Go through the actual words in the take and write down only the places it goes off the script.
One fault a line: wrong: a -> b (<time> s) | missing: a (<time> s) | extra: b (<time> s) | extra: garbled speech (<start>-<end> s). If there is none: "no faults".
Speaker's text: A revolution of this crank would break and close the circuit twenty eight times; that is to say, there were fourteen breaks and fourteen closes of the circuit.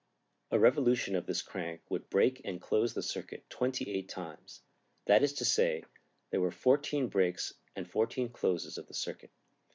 no faults